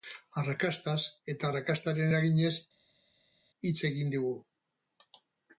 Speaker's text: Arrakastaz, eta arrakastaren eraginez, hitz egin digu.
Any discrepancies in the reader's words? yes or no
no